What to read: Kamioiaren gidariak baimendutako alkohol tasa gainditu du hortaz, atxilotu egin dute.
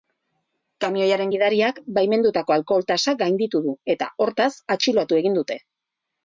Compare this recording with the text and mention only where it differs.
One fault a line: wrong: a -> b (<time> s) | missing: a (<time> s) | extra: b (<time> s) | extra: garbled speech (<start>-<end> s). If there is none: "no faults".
extra: eta (3.9 s)